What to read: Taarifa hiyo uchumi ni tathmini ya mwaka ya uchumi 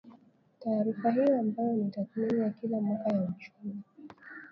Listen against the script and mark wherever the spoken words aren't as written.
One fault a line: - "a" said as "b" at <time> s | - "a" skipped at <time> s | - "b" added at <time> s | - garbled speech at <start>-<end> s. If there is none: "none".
- "uchumi" said as "ambayo" at 1.4 s
- "kila" added at 2.5 s